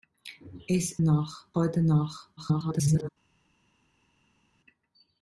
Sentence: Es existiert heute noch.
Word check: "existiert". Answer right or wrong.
wrong